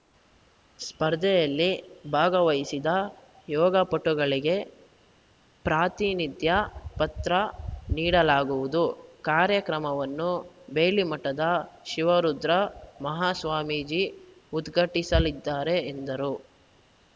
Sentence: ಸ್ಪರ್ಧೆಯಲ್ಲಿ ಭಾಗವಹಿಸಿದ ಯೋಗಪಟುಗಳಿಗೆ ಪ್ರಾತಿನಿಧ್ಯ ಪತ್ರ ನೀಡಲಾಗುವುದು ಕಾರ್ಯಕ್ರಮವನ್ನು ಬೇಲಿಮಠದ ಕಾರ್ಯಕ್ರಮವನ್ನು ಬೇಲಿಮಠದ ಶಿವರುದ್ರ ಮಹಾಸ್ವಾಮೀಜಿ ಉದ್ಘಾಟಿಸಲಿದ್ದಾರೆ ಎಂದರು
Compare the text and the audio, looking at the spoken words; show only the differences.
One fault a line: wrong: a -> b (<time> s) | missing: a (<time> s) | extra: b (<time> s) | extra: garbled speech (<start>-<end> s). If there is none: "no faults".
missing: ಕಾರ್ಯಕ್ರಮವನ್ನು ಬೇಲಿಮಠದ (11.4 s)